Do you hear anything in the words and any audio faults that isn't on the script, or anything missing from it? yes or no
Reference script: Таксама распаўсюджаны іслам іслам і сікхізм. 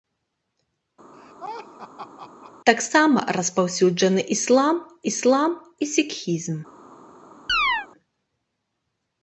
yes